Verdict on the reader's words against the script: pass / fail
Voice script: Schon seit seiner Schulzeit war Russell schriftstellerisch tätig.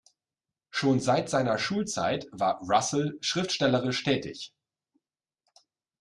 pass